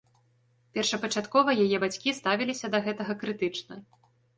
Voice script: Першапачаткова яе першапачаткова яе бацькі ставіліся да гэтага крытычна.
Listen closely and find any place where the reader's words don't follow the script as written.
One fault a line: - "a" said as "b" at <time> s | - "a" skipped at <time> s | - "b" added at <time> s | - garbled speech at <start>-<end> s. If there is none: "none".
- "першапачаткова яе" skipped at 1.8 s